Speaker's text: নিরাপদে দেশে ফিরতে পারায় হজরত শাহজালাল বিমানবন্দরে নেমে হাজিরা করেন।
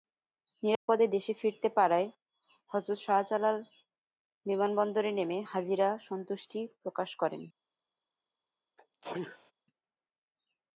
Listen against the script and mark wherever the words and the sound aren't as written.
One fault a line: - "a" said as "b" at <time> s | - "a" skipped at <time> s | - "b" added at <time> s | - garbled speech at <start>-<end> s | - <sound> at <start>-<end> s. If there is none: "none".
- dropout at 0.8-0.9 s
- "সন্তুষ্টি প্রকাশ" added at 6.1 s
- sneeze at 8.8-9.5 s